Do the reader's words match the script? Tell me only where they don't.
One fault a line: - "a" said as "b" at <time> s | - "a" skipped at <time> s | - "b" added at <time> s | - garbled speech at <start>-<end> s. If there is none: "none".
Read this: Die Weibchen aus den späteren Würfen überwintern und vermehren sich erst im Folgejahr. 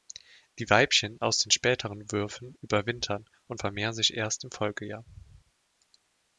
none